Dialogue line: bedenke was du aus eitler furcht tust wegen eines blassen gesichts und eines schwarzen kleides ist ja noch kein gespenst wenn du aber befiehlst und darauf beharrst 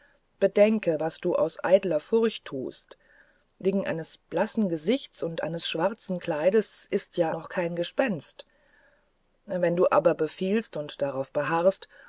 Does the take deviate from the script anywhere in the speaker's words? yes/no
no